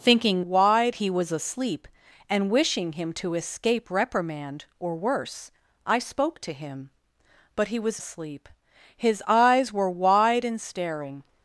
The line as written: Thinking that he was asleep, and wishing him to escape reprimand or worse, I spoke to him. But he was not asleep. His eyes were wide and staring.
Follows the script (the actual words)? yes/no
no